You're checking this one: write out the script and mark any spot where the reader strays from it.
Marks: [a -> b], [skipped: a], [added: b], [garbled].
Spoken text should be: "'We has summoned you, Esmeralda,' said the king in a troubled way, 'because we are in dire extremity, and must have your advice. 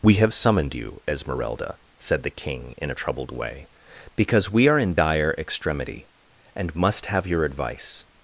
"'We [has -> have] summoned you, Esmeralda,' said the king in a troubled way, 'because we are in dire extremity, and must have your advice.